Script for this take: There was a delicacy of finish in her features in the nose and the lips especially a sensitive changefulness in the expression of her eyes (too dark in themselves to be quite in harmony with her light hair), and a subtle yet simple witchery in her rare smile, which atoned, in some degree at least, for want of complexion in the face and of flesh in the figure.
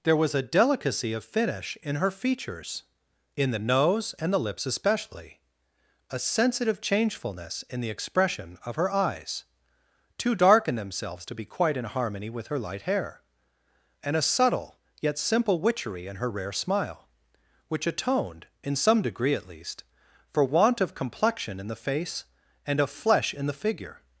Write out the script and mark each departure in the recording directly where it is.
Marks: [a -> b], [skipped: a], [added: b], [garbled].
There was a delicacy of finish in her features in the nose and the lips especially a sensitive changefulness in the expression of her eyes (too dark in themselves to be quite in harmony with her light hair), and a subtle yet simple witchery in her rare smile, which atoned, in some degree at least, for want of complexion in the face and of flesh in the figure.